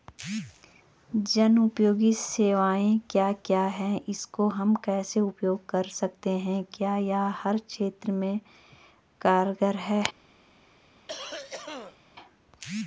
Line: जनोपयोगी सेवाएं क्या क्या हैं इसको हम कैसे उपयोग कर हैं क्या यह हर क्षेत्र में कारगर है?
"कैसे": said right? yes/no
yes